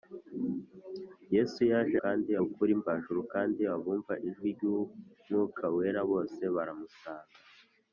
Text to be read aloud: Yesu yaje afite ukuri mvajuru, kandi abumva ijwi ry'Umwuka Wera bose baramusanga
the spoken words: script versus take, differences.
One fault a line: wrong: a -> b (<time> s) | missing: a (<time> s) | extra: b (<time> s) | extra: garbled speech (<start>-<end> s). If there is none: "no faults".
wrong: afite -> kandi (2.0 s)